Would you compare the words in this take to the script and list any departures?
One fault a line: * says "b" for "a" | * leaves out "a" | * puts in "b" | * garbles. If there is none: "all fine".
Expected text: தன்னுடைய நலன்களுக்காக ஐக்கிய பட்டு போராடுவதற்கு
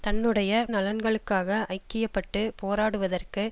all fine